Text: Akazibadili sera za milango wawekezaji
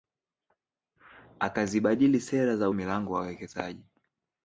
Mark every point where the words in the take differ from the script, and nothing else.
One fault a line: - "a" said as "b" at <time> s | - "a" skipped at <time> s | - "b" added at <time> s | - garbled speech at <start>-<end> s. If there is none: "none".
none